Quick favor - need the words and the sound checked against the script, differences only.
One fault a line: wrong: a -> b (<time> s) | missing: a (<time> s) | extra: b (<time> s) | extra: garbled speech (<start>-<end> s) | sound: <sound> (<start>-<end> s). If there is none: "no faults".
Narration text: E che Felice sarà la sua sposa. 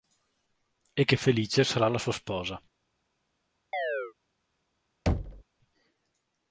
sound: chirp (3.7-4.1 s)
sound: thud (5.1-5.4 s)